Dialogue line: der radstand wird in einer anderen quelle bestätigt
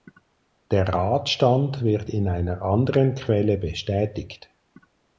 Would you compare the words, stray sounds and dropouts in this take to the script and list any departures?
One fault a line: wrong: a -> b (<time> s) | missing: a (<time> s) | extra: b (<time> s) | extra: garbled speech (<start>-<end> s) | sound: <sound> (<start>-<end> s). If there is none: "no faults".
no faults